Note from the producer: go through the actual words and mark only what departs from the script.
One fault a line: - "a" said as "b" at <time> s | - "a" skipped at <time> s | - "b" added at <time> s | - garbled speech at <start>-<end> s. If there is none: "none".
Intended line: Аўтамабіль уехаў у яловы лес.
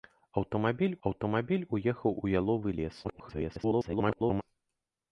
- "аўтамабіль" added at 1.1 s
- garbled speech at 3.0-4.4 s